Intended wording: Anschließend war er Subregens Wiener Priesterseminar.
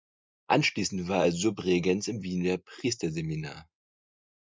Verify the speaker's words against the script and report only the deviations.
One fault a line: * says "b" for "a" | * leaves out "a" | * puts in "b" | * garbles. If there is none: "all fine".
* puts in "im"